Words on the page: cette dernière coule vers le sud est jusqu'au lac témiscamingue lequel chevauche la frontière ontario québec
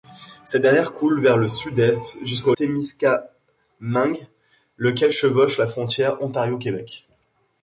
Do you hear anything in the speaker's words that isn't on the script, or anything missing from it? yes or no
yes